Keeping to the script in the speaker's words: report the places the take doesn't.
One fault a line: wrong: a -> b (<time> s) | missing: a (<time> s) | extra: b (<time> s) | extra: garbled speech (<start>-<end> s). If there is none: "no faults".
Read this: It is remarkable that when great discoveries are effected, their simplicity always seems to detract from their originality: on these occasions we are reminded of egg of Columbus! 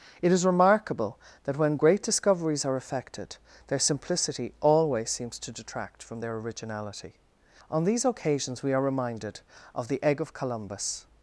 extra: the (9.9 s)